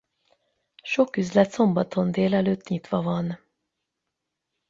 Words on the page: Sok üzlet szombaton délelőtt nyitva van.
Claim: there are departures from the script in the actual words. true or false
false